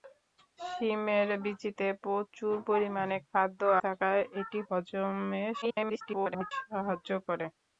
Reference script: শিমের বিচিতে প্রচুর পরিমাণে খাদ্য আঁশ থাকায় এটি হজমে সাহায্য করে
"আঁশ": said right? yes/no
no